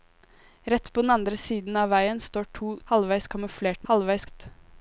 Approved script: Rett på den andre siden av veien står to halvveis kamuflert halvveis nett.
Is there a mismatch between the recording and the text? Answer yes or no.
no